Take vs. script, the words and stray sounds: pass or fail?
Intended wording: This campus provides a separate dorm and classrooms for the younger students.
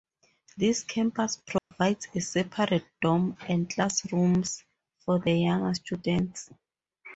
fail